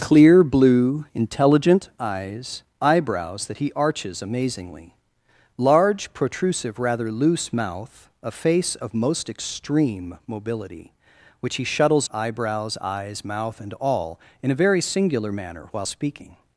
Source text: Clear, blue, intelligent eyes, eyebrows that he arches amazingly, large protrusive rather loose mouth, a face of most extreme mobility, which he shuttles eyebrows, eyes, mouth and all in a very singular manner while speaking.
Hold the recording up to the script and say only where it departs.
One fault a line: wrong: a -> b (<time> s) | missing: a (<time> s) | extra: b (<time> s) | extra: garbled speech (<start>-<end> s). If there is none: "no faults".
no faults